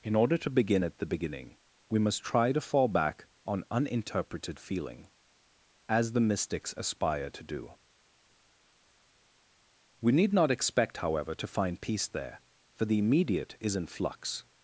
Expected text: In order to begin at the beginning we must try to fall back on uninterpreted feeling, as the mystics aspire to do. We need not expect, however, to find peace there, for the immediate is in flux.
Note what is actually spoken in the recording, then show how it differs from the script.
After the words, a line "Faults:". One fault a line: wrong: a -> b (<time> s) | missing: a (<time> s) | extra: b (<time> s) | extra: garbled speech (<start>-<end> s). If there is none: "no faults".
In order to begin at the beginning we must try to fall back on uninterpreted feeling, as the mystics aspire to do. We need not expect, however, to find peace there, for the immediate is in flux.
Faults:
no faults